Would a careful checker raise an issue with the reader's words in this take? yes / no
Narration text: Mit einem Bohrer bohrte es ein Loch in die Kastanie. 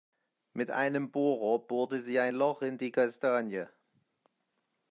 yes